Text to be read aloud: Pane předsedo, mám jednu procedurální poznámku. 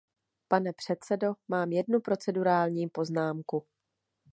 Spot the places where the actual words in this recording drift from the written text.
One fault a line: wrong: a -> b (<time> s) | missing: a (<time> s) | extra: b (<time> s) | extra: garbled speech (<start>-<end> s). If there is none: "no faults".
no faults